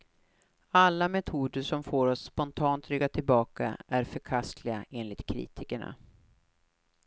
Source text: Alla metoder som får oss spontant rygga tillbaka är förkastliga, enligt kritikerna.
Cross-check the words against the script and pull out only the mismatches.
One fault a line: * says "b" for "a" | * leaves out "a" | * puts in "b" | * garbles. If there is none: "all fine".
all fine